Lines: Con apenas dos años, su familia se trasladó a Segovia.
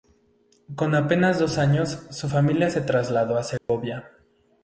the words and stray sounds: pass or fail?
fail